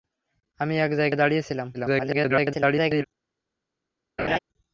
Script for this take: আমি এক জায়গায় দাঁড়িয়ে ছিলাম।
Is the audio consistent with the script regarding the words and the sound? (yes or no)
no